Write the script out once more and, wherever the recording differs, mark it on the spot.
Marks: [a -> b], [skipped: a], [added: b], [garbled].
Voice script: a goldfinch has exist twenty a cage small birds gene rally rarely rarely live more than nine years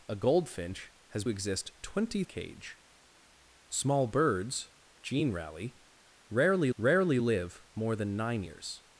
a goldfinch has exist twenty a cage small birds gene rally rarely rarely live more than nine years